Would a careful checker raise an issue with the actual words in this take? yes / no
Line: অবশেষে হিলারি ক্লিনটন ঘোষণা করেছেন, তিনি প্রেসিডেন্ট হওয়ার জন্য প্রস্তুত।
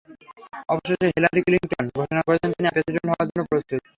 no